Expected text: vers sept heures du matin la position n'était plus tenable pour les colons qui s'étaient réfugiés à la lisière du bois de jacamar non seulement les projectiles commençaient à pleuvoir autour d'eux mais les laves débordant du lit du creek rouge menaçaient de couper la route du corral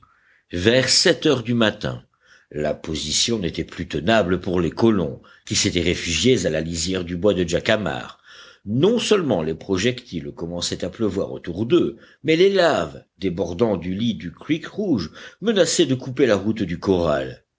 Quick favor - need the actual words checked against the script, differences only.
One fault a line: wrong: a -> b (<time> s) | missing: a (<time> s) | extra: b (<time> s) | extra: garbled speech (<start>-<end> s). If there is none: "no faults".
no faults